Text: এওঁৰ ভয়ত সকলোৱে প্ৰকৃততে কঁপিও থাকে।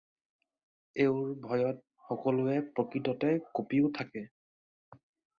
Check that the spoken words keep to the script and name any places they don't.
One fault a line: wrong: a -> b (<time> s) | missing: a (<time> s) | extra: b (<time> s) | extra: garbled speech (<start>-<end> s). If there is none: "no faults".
no faults